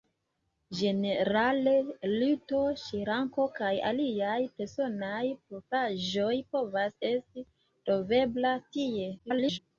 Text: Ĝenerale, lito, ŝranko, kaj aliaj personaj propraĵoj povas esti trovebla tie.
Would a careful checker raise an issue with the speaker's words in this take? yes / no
yes